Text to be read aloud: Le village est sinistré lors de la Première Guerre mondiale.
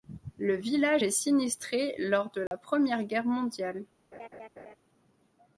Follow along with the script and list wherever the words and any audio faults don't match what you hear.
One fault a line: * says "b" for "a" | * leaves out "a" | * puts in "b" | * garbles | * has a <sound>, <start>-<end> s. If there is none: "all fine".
* has a dropout, 2.5-2.5 s
* has a laugh, 4.1-4.8 s